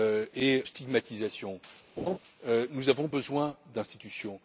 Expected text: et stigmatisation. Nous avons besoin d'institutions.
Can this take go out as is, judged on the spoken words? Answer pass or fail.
pass